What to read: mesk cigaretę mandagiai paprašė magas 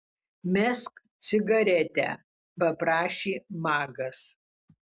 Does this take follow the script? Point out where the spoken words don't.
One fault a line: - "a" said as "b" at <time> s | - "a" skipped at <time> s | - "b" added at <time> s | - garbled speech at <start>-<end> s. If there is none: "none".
- "mandagiai" skipped at 2.1 s